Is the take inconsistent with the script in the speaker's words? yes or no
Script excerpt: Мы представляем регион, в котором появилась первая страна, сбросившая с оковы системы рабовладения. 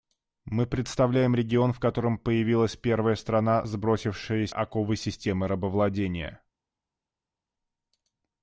no